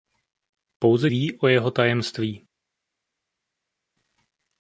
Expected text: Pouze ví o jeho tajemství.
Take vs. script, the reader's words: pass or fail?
pass